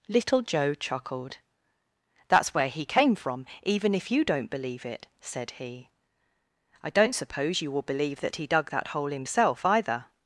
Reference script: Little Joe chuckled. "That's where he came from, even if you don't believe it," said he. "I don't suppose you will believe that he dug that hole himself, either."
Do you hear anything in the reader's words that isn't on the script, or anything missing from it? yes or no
no